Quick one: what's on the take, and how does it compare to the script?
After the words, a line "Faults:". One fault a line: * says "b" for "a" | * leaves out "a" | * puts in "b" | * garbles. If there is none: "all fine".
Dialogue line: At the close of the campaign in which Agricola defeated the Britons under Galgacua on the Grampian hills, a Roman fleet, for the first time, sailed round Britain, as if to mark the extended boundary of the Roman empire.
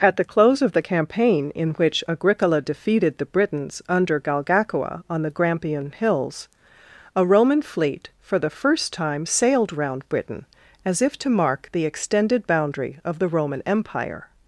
At the close of the campaign in which Agricola defeated the Britons under Galgacua on the Grampian hills, a Roman fleet, for the first time, sailed round Britain, as if to mark the extended boundary of the Roman empire.
Faults:
all fine